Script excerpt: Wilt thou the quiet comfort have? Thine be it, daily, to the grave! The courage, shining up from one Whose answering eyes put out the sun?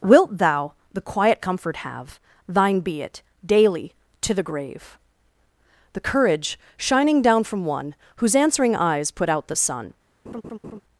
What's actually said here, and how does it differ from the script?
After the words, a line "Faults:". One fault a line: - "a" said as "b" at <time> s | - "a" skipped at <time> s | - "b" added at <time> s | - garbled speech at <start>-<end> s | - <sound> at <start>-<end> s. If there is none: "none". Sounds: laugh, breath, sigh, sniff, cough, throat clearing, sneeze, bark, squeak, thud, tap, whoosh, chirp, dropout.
Wilt thou the quiet comfort have? Thine be it, daily, to the grave! The courage, shining down from one Whose answering eyes put out the sun?
Faults:
- "up" said as "down" at 7.2 s
- laugh at 10.3-10.8 s